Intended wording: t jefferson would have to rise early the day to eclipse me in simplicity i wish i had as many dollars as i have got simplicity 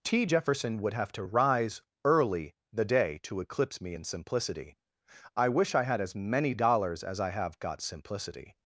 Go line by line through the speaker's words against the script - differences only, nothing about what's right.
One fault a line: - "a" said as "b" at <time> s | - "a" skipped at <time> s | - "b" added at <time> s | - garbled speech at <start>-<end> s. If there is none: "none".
none